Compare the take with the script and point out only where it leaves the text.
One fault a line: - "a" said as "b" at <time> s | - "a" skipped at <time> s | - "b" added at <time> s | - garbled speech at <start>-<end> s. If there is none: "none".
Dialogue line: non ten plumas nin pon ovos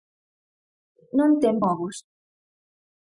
- "plumas nin pon" skipped at 1.6 s